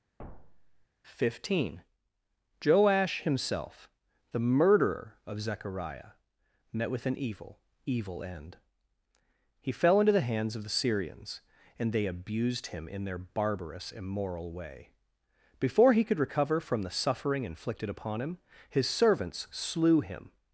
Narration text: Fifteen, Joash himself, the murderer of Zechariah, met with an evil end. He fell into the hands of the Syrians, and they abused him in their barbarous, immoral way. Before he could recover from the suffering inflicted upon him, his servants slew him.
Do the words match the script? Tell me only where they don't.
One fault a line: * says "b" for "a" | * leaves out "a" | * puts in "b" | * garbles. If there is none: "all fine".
* puts in "evil"